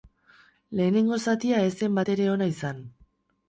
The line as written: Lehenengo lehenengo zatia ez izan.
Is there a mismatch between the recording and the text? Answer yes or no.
yes